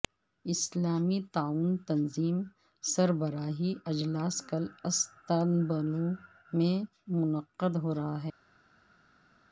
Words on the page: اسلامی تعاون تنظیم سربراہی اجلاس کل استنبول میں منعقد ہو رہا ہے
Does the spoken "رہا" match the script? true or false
true